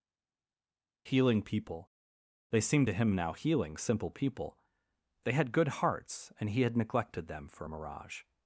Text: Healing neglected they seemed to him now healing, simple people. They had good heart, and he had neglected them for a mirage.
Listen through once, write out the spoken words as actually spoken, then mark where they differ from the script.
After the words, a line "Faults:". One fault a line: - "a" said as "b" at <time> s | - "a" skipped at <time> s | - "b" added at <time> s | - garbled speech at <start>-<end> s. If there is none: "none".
Healing people they seemed to him now healing, simple people. They had good hearts, and he had neglected them for a mirage.
Faults:
- "neglected" said as "people" at 1.4 s
- "heart" said as "hearts" at 5.8 s